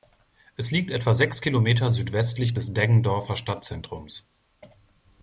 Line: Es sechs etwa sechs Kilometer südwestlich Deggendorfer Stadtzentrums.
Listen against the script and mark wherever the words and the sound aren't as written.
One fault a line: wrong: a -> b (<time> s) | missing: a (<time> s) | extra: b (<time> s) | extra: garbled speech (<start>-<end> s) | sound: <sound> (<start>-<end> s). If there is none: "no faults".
wrong: sechs -> liegt (0.7 s)
extra: des (2.5 s)